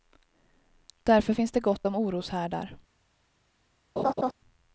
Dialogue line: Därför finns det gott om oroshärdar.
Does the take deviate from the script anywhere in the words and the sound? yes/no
yes